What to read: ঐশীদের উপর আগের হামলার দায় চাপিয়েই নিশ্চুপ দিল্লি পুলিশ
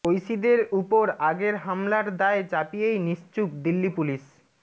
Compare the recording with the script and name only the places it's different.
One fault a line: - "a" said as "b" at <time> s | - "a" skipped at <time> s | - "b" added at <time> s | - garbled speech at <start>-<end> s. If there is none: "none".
none